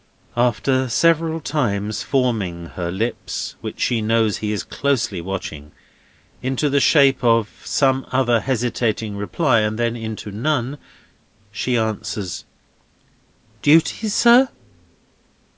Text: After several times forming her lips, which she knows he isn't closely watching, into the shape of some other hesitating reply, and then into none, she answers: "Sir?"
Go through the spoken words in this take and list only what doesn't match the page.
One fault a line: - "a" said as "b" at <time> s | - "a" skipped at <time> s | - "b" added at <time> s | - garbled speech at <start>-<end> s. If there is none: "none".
- "isn't" said as "is" at 4.5 s
- "Duty" added at 13.6 s